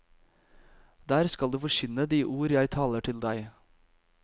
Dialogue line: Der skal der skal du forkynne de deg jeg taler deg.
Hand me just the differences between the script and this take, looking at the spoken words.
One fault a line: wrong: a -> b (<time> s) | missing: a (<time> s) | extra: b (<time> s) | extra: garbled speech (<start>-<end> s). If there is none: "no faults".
missing: der skal (1.5 s)
wrong: deg -> ord (2.2 s)
extra: til (3.0 s)